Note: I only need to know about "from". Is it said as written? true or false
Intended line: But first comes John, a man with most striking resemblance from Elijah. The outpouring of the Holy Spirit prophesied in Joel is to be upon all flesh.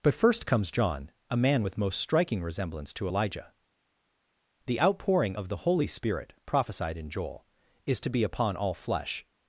false